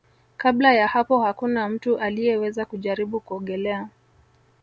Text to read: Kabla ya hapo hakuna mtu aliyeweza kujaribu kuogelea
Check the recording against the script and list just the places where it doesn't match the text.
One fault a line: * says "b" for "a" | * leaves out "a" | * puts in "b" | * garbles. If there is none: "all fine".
all fine